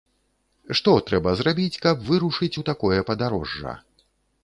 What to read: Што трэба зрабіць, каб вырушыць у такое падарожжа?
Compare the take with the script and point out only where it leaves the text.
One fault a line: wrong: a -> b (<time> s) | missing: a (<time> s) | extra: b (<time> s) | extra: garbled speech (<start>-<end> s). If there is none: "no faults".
no faults